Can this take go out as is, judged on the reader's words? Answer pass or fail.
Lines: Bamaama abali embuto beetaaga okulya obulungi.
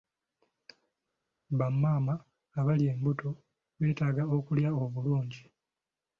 pass